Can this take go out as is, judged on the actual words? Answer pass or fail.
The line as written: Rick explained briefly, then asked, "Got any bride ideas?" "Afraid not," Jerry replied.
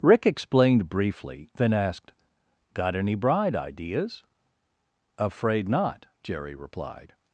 pass